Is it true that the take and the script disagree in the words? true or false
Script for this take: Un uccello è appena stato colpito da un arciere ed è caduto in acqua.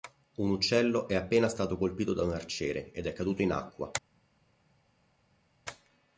false